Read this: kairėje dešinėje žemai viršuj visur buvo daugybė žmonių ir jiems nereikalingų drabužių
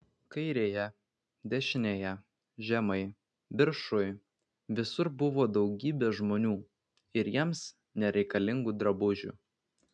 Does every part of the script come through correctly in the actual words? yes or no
yes